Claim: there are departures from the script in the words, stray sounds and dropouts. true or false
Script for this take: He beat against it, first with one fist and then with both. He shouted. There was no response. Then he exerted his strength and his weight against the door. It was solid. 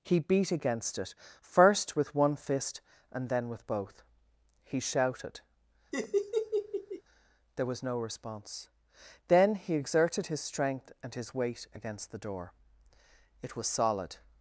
true